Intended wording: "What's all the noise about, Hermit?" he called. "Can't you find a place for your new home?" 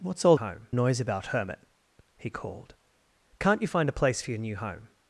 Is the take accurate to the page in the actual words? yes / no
no